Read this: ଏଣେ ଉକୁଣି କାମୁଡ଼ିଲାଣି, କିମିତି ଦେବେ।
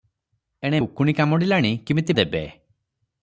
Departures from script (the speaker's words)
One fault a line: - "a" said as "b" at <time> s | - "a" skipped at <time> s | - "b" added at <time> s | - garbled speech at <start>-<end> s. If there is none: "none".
none